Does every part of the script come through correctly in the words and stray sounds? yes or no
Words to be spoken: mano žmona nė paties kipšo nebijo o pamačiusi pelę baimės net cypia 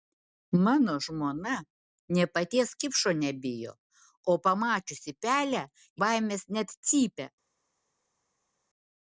yes